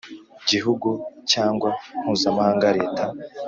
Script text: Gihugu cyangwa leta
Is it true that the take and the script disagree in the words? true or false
true